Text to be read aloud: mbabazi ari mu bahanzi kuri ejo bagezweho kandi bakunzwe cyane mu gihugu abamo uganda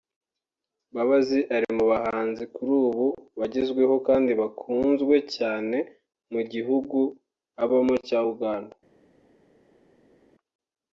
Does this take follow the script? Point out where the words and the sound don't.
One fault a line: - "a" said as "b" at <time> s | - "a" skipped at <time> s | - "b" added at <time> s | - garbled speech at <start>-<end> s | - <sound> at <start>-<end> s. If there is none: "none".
- "ejo" said as "ubu" at 2.9 s
- "cya" added at 8.1 s